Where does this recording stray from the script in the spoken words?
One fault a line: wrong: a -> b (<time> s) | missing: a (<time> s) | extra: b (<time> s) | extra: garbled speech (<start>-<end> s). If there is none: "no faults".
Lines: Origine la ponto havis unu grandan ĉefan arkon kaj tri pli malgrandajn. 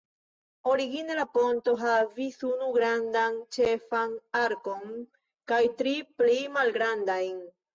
no faults